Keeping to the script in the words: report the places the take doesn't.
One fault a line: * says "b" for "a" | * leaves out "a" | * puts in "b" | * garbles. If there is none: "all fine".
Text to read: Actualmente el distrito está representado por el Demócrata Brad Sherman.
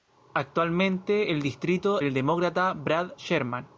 * leaves out "está representado por"